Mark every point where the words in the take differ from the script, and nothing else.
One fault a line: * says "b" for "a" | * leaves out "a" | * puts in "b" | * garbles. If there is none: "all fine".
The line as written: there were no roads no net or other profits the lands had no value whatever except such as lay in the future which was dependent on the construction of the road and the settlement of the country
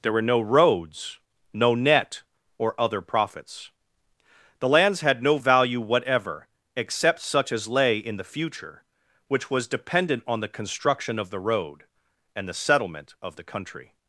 all fine